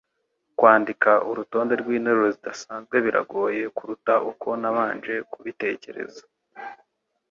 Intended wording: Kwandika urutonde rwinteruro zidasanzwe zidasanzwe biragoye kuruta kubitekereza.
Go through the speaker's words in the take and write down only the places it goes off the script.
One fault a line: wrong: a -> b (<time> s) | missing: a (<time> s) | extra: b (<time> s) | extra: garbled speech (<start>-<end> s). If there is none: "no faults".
missing: zidasanzwe (3.0 s)
extra: uko nabanje (4.3 s)